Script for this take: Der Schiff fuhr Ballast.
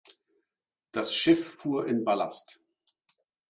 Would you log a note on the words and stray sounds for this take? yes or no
yes